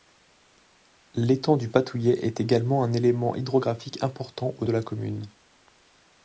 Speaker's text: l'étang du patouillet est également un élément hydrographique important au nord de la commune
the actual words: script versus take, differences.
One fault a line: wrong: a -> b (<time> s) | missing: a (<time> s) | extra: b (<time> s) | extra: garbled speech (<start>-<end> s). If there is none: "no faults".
missing: nord (4.7 s)